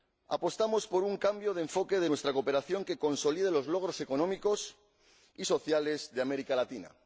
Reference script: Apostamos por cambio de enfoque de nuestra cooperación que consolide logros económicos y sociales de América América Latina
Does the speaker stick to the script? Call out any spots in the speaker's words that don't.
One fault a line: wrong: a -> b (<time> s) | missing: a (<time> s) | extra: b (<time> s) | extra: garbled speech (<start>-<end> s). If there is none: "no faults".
extra: un (1.0 s)
extra: los (3.5 s)
missing: América (6.5 s)